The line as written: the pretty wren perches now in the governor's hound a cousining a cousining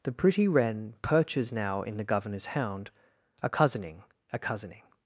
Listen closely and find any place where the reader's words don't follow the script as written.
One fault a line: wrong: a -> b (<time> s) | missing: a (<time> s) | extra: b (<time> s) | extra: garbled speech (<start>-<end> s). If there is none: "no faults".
no faults